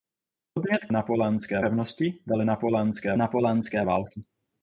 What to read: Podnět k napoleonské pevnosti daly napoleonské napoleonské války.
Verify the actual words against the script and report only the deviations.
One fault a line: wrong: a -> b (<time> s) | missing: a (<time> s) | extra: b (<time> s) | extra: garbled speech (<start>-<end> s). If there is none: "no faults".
no faults